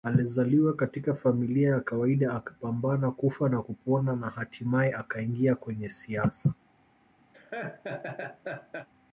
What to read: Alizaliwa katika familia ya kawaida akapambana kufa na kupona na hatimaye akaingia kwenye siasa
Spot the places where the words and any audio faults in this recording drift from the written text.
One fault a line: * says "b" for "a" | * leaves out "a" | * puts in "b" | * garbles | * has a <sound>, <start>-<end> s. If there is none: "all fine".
* has a laugh, 7.3-8.9 s